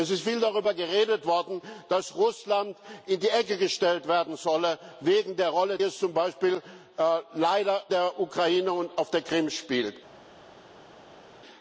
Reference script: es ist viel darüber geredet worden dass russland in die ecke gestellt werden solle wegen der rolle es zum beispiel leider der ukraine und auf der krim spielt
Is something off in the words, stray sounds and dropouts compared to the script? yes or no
no